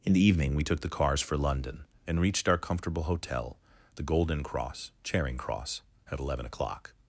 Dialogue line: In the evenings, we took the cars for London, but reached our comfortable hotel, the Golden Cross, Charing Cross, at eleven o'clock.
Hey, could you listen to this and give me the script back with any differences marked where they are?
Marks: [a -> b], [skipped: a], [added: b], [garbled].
In the [evenings, -> evening] we took the cars for London, [but -> and] reached our comfortable hotel, the Golden Cross, Charing Cross, at eleven o'clock.